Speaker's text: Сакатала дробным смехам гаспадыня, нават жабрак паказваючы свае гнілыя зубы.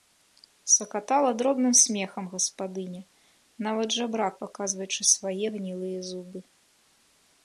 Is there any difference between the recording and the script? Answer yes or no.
no